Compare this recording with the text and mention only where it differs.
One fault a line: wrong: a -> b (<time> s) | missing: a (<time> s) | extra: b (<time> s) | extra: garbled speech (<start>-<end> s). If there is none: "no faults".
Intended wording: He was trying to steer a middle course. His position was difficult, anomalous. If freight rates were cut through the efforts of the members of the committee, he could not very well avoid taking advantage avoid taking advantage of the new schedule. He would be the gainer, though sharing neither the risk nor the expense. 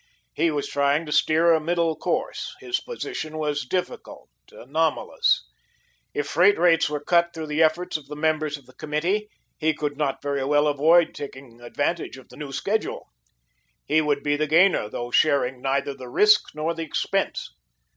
missing: avoid taking advantage (12.2 s)